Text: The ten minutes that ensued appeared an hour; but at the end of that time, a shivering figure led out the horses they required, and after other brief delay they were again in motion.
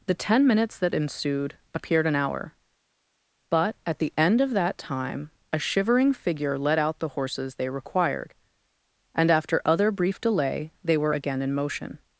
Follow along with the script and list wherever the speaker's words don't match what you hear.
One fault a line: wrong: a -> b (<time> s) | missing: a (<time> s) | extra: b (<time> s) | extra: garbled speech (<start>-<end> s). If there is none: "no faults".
no faults